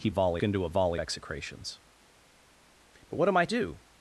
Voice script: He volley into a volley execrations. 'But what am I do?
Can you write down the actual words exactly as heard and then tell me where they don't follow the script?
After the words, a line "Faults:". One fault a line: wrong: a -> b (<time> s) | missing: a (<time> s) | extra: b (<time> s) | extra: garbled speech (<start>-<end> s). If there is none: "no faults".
He volley into a volley execrations. 'But what am I do?
Faults:
no faults